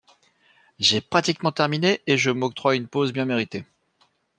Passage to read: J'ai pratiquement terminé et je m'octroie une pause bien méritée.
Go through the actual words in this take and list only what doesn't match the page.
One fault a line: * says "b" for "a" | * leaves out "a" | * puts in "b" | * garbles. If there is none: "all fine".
all fine